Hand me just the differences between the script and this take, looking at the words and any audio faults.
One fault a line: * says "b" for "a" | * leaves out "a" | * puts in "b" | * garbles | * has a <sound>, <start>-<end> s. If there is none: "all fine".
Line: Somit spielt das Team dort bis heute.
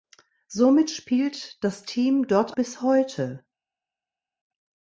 all fine